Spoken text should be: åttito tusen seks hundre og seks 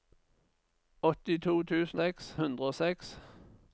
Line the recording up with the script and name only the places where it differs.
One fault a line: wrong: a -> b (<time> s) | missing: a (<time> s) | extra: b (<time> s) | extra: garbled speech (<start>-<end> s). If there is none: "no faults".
no faults